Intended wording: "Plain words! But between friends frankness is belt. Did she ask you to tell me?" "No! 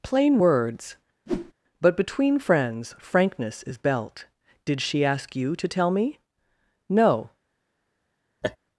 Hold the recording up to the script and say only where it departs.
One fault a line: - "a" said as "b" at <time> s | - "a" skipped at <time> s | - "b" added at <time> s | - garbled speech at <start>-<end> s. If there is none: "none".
none